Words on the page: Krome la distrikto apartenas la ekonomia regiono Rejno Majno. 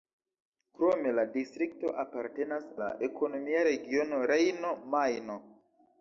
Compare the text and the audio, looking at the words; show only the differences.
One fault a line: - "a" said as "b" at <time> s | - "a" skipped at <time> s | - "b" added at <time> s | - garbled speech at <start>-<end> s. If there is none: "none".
none